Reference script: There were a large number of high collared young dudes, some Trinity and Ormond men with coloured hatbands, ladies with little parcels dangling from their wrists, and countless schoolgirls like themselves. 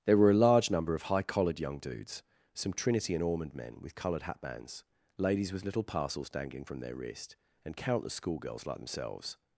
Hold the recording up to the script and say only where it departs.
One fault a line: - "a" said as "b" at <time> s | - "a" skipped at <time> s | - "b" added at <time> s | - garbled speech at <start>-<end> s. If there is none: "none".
- "wrists" said as "wrist" at 6.9 s